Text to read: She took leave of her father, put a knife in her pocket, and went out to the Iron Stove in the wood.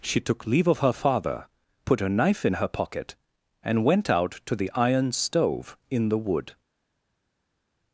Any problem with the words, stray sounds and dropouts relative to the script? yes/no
no